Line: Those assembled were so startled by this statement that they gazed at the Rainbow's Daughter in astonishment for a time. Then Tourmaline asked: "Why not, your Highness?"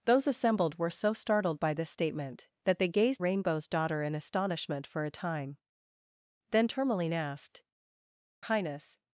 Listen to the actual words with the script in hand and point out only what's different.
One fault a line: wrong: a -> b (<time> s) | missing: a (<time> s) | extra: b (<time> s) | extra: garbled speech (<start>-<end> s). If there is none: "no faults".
missing: at the (3.2 s)
missing: Why not your (7.6 s)